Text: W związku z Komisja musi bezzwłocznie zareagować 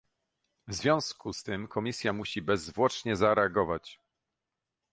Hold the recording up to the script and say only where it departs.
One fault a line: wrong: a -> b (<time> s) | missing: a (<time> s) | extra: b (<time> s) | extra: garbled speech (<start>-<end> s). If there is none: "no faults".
extra: tym (1.4 s)